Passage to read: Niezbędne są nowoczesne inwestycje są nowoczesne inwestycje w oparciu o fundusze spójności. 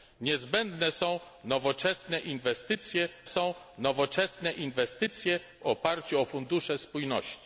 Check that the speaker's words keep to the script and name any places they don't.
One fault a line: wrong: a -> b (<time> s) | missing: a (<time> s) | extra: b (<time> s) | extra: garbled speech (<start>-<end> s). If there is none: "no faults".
no faults